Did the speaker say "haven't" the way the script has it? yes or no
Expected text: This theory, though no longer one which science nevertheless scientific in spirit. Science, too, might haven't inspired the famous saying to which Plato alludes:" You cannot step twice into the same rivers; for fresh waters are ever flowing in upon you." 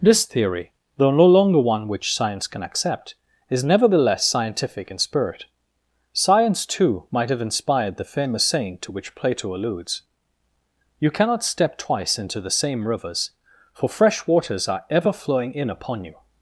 no